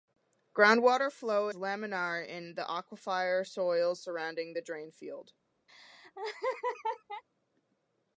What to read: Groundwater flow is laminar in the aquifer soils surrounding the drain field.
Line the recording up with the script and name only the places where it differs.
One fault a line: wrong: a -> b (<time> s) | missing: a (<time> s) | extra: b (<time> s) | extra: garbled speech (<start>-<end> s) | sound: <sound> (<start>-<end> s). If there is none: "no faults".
missing: is (1.5 s)
sound: laugh (5.7-7.2 s)